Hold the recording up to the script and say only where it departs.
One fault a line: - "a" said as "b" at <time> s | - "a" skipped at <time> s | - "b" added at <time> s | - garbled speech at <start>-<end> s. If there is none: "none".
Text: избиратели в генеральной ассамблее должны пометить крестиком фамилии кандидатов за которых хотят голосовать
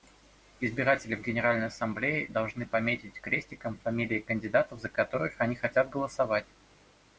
- "они" added at 5.4 s